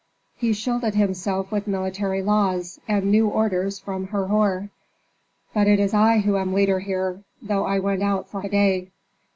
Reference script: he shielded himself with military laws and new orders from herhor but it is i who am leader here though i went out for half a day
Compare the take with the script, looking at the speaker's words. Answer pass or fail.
fail